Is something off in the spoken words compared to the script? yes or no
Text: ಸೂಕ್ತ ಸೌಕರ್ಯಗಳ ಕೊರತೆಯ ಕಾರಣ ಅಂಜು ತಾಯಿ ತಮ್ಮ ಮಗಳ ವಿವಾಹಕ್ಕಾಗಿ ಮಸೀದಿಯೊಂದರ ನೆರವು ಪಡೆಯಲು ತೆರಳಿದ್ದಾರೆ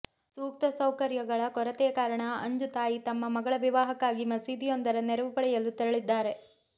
no